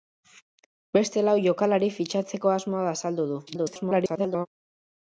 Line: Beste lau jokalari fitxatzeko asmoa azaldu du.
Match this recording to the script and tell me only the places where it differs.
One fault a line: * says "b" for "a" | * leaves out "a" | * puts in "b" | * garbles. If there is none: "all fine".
* garbles